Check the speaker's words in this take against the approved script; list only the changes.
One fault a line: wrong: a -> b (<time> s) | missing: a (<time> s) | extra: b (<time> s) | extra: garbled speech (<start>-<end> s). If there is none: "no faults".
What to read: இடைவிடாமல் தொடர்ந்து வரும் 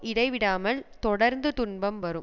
extra: துன்பம் (1.5 s)